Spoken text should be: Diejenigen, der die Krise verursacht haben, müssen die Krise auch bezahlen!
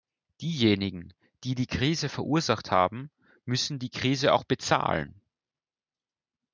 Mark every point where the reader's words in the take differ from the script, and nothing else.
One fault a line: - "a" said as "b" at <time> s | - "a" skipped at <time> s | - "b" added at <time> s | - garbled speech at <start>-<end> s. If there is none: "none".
- "der" said as "die" at 1.4 s